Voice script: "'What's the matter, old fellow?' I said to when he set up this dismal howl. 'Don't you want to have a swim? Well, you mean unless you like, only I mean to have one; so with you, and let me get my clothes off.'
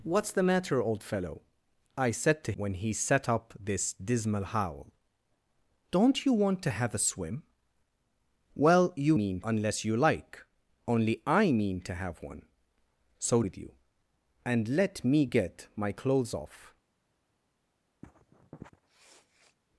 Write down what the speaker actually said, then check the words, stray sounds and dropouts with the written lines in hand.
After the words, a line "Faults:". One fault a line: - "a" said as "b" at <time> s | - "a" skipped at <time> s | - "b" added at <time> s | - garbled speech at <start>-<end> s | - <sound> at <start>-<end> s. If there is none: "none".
"'What's the matter, old fellow?' I said to when he set up this dismal howl. 'Don't you want to have a swim? Well, you mean unless you like, only I mean to have one; so with you, and let me get my clothes off.'
Faults:
- sniff at 18.0-19.6 s